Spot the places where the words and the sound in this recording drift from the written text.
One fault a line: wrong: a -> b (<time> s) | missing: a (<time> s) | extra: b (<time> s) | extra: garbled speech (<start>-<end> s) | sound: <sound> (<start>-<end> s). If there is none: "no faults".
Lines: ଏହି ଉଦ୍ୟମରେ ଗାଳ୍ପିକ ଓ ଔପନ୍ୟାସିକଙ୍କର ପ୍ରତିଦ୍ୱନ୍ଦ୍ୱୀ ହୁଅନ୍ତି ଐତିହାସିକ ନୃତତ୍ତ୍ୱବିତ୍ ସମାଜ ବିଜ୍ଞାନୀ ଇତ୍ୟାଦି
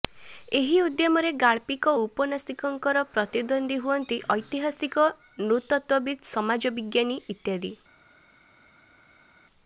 no faults